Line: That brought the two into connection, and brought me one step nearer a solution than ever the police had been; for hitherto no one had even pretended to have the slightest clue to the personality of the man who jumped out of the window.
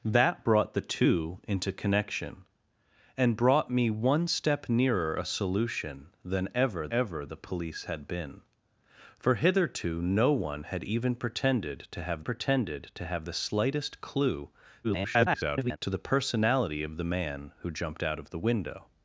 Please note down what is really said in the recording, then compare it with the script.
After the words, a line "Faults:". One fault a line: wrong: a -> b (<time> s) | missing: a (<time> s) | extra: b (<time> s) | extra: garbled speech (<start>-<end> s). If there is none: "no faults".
That brought the two into connection, and brought me one step nearer a solution than ever ever the police had been; for hitherto no one had even pretended to have pretended to have the slightest clue [garbled] to the personality of the man who jumped out of the window.
Faults:
extra: ever (6.9 s)
extra: pretended to have (12.2 s)
extra: garbled speech (14.8-15.8 s)